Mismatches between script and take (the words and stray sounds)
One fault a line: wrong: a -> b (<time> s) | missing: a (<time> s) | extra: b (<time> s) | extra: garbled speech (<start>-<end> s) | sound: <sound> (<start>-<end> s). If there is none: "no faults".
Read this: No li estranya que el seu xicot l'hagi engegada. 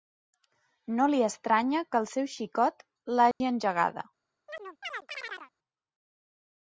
sound: dropout (3.3-3.4 s)
sound: chirp (4.5-5.5 s)